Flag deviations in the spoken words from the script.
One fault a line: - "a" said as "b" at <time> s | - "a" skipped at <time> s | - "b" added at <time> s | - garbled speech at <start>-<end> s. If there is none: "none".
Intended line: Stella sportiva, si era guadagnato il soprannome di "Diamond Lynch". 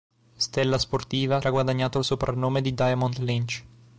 - "si" skipped at 1.4 s